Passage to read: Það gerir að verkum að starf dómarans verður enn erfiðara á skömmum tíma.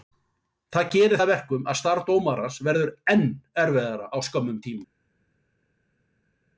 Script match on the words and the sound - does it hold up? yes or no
yes